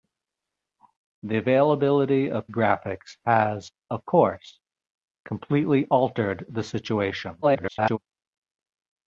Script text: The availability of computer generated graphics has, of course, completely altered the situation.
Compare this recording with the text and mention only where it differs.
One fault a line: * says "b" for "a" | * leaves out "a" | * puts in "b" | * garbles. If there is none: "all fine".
* leaves out "computer generated"
* garbles